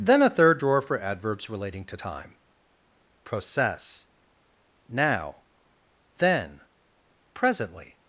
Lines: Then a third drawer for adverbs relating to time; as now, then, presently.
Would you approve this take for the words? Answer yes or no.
no